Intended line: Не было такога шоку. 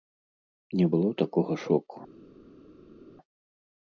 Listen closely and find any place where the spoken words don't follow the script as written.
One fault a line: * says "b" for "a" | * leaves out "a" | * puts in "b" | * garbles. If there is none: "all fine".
all fine